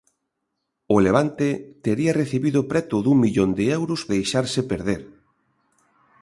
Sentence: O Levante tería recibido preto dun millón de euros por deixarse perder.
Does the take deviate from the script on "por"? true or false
true